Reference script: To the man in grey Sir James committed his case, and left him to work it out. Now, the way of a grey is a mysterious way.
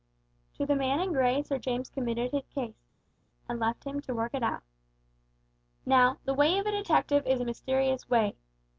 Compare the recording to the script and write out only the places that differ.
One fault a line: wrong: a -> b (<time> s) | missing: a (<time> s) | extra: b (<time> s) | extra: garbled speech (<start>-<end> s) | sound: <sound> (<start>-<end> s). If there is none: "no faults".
wrong: grey -> detective (6.7 s)